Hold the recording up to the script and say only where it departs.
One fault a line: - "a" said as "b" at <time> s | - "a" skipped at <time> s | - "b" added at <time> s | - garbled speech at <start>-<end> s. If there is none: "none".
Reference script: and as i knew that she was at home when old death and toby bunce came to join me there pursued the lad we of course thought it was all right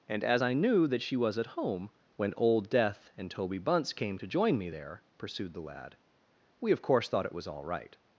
none